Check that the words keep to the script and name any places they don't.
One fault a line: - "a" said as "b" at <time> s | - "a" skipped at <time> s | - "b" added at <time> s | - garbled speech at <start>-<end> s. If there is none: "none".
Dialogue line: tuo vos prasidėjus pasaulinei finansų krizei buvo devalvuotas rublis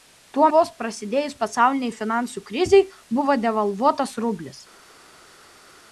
none